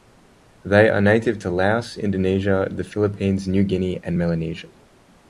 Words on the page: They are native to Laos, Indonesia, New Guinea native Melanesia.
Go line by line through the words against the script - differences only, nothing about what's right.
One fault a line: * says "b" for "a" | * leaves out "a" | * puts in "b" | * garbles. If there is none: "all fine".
* puts in "the Philippines"
* says "and" for "native"